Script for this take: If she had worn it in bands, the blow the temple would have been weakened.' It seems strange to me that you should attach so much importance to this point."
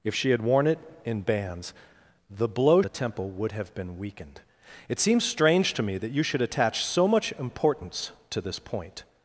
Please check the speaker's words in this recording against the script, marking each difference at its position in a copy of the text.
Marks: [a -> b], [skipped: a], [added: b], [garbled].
If she had worn it in bands, the blow the temple would have been weakened.' It seems strange to me that you should attach so much importance to this point."